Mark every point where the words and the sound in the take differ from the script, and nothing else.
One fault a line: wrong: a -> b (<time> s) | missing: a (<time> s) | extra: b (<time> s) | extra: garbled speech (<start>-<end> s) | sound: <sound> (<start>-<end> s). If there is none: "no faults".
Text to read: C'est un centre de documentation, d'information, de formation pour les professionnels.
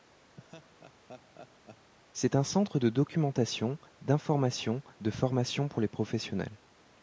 sound: laugh (0.4-1.9 s)